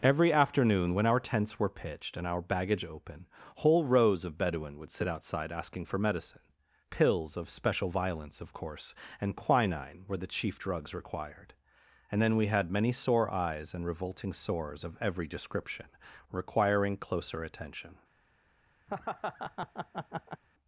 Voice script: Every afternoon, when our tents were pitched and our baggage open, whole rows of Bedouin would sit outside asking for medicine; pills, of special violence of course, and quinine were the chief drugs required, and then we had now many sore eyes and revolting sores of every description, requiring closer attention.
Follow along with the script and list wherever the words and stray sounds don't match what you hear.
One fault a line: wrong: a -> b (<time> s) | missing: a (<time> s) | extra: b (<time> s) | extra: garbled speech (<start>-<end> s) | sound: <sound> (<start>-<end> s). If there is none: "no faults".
missing: now (12.7 s)
sound: laugh (18.9-20.4 s)